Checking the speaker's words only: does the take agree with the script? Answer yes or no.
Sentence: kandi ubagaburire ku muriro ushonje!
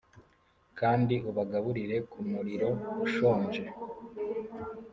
yes